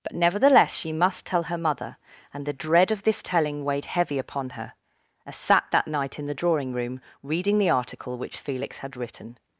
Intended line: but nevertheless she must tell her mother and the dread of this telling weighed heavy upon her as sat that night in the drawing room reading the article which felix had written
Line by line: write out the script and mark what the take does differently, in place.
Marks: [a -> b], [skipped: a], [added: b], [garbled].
but nevertheless she must tell her mother and the dread of this telling weighed heavy upon her as sat that night in the drawing room reading the article which felix had written